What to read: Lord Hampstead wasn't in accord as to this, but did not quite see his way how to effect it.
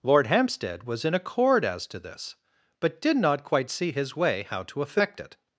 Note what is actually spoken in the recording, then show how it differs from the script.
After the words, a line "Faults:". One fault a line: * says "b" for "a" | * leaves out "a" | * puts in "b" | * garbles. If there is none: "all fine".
Lord Hampstead was in accord as to this, but did not quite see his way how to effect it.
Faults:
* says "was" for "wasn't"